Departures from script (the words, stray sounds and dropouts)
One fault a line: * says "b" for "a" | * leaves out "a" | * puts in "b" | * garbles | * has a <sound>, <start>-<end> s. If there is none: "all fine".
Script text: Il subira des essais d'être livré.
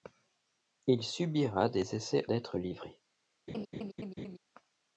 * has a laugh, 3.5-4.4 s